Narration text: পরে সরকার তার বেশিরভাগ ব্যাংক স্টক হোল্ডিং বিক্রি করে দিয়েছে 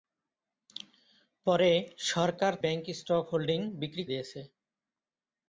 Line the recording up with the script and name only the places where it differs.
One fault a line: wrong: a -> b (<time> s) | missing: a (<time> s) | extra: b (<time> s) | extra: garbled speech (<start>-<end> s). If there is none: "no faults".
missing: তার বেশিরভাগ (2.5 s)
missing: করে (4.0 s)